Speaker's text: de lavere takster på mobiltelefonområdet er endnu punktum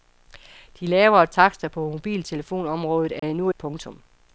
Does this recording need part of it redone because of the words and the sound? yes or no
yes